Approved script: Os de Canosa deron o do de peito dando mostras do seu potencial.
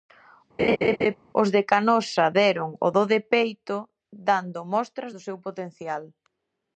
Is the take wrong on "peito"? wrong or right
right